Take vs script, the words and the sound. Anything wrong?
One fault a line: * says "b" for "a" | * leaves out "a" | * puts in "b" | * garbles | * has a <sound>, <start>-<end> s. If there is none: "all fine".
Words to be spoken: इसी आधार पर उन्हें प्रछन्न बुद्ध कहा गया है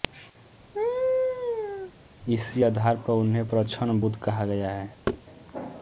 * has a laugh, 0.7-1.9 s
* has a thud, 5.1-5.2 s